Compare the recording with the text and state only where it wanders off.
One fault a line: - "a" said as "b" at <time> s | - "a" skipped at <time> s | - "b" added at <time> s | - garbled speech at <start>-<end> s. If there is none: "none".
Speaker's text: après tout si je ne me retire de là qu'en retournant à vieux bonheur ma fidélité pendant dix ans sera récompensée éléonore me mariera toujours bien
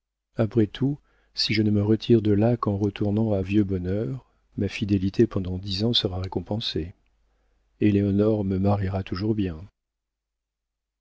none